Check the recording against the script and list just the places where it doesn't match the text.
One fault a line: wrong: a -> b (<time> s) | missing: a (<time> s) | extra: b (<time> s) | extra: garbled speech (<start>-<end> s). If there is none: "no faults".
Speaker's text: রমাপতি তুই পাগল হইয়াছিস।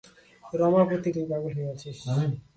no faults